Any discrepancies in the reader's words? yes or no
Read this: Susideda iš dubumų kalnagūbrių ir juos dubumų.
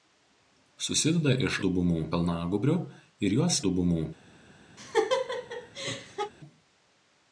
no